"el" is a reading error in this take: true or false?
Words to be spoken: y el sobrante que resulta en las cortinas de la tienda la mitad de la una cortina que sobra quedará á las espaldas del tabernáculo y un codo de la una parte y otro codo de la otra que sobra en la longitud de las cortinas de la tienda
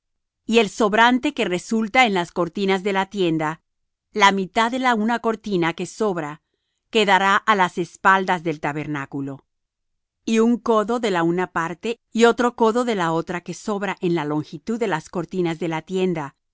false